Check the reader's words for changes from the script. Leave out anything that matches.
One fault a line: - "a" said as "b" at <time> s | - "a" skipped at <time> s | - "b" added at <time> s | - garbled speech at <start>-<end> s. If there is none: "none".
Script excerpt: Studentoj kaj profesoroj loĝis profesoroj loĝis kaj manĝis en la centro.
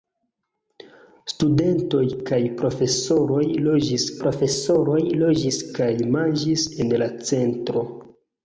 none